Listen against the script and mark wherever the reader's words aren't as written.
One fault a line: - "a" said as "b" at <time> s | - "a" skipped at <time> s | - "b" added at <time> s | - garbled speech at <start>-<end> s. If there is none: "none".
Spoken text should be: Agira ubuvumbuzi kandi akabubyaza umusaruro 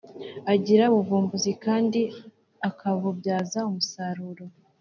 none